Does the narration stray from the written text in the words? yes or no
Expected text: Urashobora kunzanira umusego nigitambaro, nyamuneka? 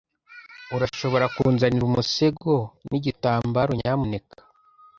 no